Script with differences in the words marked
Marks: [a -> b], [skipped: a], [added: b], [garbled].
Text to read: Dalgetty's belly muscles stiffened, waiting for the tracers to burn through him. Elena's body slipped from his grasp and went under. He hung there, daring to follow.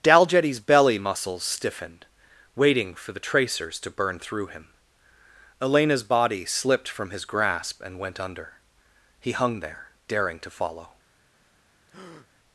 Dalgetty's belly muscles stiffened, waiting for the tracers to burn through him. Elena's body slipped from his grasp and went under. He hung there, daring to follow.